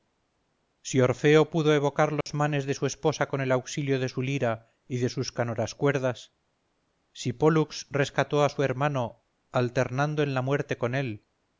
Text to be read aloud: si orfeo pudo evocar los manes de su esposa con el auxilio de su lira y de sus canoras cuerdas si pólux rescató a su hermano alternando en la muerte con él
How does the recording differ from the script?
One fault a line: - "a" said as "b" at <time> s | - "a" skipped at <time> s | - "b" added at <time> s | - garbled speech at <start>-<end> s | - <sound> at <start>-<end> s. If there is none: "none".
- dropout at 2.2-2.3 s